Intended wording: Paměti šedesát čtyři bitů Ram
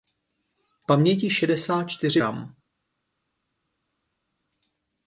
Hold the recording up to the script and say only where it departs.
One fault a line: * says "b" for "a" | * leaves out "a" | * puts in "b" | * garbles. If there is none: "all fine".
* leaves out "bitů"